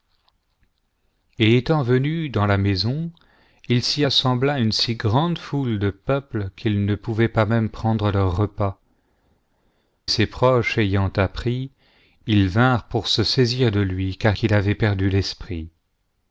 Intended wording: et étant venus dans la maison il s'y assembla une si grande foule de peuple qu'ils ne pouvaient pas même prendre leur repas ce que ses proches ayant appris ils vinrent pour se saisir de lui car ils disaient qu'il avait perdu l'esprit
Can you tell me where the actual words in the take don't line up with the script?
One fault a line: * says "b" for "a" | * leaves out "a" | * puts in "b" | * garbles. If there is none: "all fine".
* leaves out "ce que"
* leaves out "ils disaient"